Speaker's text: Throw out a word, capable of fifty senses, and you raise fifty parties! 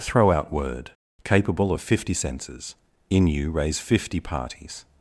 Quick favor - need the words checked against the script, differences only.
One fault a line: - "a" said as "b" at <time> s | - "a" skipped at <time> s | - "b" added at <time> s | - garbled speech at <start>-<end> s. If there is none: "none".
- "a" skipped at 0.5 s
- "and" said as "in" at 3.1 s